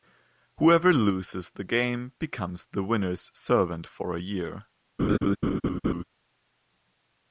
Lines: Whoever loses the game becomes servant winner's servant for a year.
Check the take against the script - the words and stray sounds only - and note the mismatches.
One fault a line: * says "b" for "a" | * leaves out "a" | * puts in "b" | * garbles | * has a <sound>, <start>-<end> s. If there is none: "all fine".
* says "the" for "servant"
* has a laugh, 5.0-6.0 s